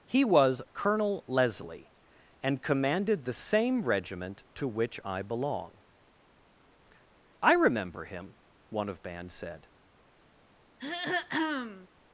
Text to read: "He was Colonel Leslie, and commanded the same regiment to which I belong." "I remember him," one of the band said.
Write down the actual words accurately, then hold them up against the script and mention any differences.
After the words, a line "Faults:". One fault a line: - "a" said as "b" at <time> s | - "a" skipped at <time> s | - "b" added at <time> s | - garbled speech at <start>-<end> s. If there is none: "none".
"He was Colonel Leslie, and commanded the same regiment to which I belong." "I remember him," one of band said.
Faults:
- "the" skipped at 9.0 s